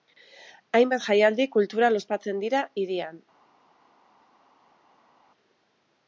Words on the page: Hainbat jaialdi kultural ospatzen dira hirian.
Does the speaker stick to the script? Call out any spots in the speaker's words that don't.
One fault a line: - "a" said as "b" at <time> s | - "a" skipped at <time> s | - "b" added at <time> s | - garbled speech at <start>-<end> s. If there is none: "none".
none